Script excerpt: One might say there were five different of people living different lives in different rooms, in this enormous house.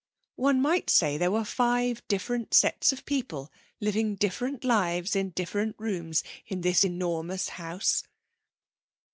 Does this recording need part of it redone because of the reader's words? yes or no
yes